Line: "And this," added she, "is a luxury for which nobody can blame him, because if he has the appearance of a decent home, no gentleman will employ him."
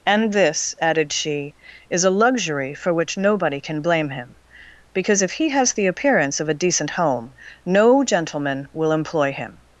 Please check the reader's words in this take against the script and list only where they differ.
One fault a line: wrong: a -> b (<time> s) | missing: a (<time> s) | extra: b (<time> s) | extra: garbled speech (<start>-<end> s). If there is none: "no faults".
no faults